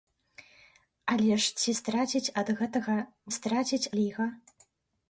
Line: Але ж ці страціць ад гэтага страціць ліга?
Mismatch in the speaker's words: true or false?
false